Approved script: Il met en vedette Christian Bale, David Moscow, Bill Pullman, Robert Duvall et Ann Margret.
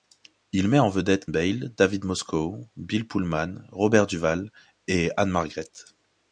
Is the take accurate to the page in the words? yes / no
no